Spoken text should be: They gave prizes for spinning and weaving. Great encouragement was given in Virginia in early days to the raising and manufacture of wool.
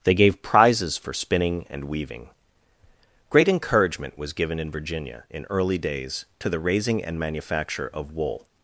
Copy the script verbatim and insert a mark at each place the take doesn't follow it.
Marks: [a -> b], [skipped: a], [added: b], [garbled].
They gave prizes for spinning and weaving. Great encouragement was given in Virginia in early days to the raising and manufacture of wool.